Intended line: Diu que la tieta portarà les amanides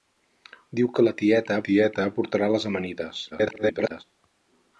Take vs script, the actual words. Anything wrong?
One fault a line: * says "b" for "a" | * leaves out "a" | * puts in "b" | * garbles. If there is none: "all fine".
* puts in "tieta"
* garbles